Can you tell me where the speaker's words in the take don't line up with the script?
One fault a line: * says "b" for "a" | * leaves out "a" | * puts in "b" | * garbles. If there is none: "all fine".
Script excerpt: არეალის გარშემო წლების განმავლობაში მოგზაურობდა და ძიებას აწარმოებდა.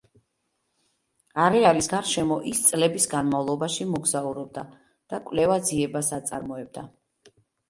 * puts in "ის"
* puts in "კვლევა"